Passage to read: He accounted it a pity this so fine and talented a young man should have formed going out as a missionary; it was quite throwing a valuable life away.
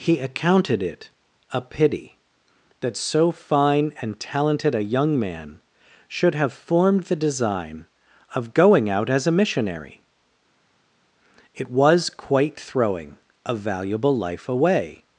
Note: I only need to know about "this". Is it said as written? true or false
false